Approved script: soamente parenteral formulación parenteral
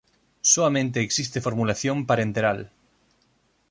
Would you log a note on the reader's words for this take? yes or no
yes